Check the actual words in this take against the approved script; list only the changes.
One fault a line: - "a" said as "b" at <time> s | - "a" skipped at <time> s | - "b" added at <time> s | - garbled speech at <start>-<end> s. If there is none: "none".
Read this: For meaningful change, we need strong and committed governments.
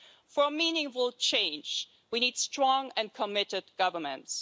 none